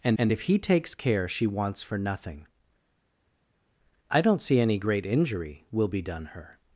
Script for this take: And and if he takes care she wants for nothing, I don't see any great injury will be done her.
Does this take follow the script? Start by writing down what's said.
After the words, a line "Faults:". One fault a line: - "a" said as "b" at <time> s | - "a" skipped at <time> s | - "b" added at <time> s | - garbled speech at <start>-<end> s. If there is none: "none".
And and if he takes care she wants for nothing, I don't see any great injury will be done her.
Faults:
none